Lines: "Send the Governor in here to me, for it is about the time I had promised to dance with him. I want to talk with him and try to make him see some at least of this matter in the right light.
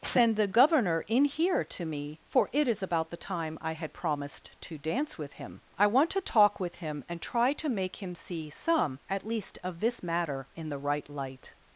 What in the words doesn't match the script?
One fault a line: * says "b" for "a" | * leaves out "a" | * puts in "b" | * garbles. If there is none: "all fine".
all fine